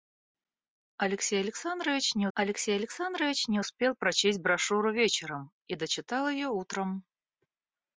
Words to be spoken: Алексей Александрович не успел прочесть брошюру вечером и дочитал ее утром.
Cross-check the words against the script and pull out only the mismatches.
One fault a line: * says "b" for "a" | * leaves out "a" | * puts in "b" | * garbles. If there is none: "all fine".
* puts in "алексей Александрович не"